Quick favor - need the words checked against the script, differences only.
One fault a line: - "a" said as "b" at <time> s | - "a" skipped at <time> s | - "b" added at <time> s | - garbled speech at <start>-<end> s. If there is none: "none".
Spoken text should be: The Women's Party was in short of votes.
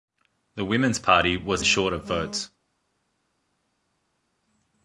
- "in" skipped at 1.6 s